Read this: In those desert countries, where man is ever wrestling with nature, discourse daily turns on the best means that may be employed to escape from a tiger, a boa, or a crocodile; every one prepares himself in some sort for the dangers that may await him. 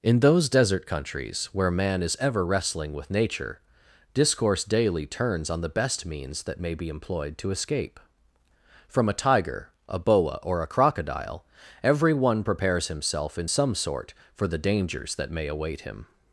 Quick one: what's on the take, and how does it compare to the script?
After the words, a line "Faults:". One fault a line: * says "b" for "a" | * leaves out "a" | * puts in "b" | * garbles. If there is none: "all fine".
In those desert countries, where man is ever wrestling with nature, discourse daily turns on the best means that may be employed to escape from a tiger, a boa, or a crocodile; every one prepares himself in some sort for the dangers that may await him.
Faults:
all fine